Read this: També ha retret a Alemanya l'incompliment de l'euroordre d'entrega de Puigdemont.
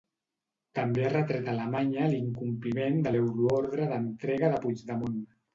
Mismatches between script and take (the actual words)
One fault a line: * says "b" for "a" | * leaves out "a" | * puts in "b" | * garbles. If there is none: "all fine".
all fine